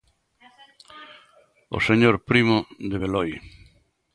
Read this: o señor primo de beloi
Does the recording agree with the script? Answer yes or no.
yes